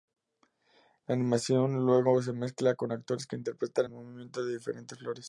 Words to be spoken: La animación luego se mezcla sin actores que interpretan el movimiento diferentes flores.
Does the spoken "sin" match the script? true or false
false